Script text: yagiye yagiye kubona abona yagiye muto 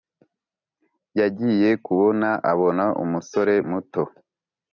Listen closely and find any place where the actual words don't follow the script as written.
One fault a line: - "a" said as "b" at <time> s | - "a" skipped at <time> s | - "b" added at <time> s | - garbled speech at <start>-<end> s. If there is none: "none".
- "yagiye" skipped at 1.7 s
- "yagiye" said as "umusore" at 3.0 s